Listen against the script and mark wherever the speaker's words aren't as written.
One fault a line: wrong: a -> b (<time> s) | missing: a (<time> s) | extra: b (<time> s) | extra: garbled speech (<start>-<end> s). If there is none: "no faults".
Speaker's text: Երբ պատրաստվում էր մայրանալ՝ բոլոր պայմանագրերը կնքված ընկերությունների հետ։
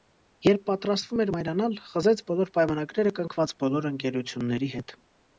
extra: խզեց (1.9 s)
extra: բոլոր (3.6 s)